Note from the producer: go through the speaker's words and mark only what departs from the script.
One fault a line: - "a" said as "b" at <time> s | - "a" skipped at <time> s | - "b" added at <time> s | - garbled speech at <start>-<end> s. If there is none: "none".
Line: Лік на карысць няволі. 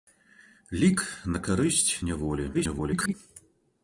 - garbled speech at 2.5-3.1 s